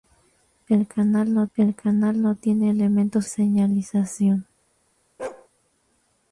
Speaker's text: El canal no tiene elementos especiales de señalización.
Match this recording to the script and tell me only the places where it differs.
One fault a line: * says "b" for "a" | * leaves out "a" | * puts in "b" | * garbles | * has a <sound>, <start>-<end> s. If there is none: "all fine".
* puts in "el canal no"
* leaves out "especiales de"
* has a bark, 5.2-5.5 s